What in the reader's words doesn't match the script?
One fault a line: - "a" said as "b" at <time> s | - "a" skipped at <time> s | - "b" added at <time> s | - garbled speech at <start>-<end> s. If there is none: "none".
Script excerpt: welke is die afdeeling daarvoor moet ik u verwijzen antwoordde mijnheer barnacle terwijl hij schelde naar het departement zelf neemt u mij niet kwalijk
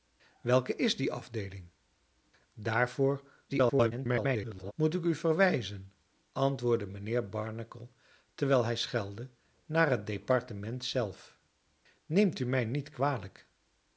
- garbled speech at 3.5-4.7 s